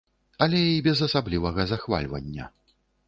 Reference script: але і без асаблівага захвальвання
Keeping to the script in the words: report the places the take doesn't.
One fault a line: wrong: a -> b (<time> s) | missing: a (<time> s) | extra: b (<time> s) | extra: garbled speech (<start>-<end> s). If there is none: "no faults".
no faults